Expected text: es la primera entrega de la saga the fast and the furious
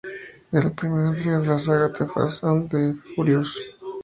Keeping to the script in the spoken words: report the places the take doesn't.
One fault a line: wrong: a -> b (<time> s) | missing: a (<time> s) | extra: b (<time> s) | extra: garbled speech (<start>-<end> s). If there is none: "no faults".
no faults